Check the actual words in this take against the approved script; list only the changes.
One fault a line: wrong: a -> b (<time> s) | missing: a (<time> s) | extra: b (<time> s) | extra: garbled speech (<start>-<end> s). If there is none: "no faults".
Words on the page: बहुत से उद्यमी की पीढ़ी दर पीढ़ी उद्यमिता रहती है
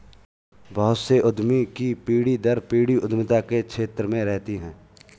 extra: के क्षेत्र में (3.4 s)